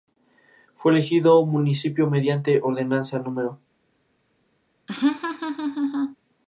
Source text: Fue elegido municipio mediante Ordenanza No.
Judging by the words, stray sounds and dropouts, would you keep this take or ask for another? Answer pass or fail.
fail